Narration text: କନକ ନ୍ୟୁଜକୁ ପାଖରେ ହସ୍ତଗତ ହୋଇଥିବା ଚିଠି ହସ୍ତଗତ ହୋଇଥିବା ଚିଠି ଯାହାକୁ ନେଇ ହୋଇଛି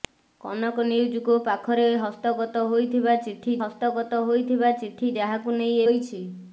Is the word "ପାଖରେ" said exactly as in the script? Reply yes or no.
yes